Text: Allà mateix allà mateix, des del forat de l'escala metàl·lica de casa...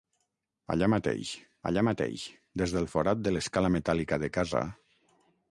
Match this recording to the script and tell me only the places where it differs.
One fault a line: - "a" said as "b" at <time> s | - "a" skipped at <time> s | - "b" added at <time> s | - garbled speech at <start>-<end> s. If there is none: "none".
none